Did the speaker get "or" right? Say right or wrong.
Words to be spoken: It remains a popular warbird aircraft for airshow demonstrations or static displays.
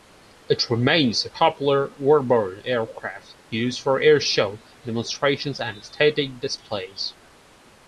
wrong